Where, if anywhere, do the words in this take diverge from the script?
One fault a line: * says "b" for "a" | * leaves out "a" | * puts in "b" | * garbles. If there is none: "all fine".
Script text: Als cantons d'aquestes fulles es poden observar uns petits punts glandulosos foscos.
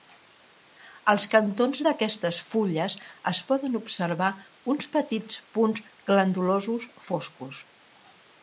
all fine